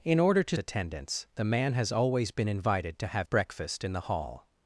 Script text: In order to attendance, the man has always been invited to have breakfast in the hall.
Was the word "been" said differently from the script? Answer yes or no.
no